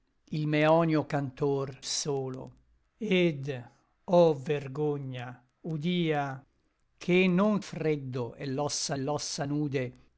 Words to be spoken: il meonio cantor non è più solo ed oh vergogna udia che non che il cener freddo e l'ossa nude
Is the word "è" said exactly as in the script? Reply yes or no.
no